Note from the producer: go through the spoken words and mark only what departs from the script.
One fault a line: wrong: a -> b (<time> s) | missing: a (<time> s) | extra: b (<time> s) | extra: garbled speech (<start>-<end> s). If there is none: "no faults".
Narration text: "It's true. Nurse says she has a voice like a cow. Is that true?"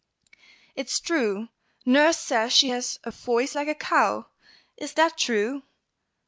no faults